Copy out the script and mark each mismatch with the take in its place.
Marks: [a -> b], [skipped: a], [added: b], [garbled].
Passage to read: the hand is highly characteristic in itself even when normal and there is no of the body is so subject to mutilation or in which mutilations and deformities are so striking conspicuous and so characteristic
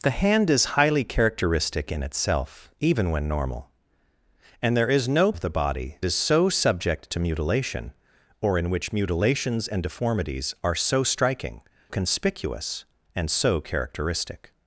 the hand is highly characteristic in itself even when normal and there is no of the body is so subject to mutilation or in which mutilations and deformities are so striking conspicuous and so characteristic